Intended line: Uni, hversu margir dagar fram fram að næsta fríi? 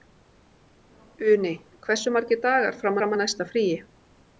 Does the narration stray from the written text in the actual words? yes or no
no